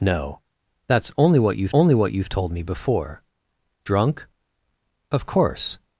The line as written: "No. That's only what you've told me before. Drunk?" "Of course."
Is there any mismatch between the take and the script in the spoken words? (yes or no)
yes